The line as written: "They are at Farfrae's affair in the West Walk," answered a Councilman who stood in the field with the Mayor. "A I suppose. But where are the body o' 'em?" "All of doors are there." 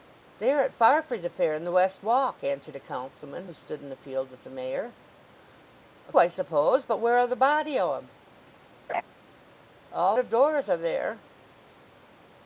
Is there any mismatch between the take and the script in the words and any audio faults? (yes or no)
yes